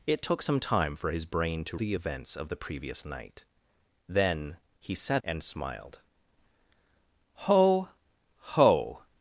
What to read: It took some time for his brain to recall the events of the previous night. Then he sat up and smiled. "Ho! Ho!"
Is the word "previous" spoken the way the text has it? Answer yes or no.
yes